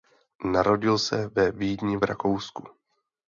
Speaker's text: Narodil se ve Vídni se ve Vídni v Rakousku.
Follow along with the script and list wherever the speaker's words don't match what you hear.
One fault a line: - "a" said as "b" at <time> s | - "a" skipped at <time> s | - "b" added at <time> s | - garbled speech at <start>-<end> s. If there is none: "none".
- "se ve Vídni" skipped at 2.0 s